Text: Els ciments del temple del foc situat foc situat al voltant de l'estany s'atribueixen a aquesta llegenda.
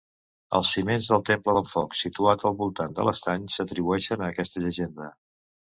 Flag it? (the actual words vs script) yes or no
yes